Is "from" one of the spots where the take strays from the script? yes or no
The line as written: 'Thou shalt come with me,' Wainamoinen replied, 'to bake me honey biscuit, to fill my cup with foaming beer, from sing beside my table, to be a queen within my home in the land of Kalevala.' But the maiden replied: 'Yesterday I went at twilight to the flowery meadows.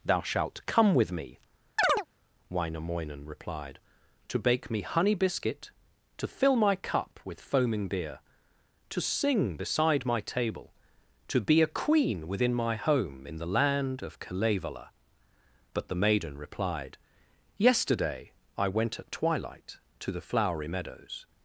yes